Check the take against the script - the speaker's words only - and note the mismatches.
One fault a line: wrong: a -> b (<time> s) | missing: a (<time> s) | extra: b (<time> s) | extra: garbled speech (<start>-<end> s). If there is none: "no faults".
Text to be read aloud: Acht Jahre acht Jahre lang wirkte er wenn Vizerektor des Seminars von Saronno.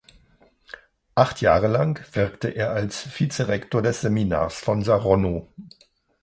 missing: acht Jahre (1.7 s)
wrong: wenn -> als (2.7 s)